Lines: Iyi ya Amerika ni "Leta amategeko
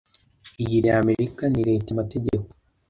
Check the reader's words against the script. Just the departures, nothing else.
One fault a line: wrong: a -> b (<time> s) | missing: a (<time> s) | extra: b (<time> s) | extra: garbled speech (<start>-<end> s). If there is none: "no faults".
no faults